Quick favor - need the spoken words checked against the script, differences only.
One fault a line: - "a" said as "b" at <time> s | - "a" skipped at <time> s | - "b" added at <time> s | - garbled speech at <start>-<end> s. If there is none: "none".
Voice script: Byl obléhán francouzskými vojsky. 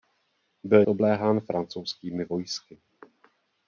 none